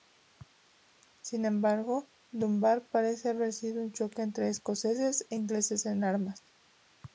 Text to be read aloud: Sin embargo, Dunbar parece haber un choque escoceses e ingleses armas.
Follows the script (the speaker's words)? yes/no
no